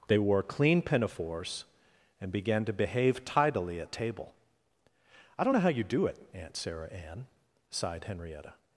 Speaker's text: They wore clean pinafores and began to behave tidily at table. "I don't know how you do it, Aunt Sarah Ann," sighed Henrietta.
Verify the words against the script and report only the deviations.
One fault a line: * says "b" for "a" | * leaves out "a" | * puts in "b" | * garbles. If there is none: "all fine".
all fine